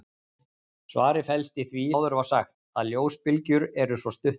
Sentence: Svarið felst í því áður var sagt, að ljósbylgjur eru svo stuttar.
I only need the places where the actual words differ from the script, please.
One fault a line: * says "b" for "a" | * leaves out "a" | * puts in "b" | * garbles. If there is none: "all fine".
all fine